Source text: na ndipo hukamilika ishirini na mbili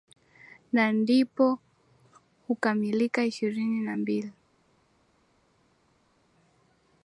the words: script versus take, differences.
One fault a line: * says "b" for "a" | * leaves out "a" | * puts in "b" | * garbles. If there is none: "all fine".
all fine